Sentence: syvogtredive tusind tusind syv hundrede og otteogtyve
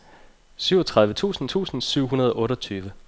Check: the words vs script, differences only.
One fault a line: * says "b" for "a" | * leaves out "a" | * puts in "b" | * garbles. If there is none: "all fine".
all fine